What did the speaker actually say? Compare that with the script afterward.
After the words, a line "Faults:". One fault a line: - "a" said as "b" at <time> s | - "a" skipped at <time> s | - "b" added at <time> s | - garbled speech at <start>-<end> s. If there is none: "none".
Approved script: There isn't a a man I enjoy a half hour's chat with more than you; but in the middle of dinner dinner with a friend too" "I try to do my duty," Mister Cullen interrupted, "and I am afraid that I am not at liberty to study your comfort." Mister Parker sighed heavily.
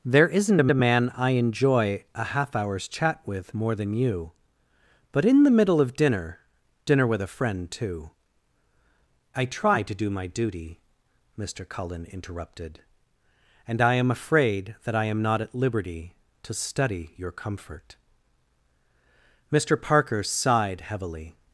There isn't a a man I enjoy a half hour's chat with more than you; but in the middle of dinner dinner with a friend too" "I try to do my duty," Mister Cullen interrupted, "and I am afraid that I am not at liberty to study your comfort." Mister Parker sighed heavily.
Faults:
none